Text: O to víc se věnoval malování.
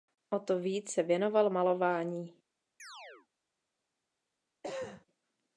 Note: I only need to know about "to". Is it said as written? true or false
true